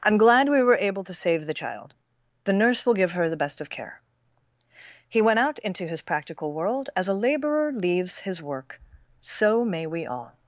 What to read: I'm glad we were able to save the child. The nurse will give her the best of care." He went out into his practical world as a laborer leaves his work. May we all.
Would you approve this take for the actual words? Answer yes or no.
no